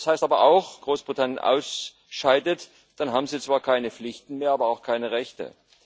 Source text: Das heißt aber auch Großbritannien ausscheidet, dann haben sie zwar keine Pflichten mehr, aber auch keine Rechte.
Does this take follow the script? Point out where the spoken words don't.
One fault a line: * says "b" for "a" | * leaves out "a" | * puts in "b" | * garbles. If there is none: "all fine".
all fine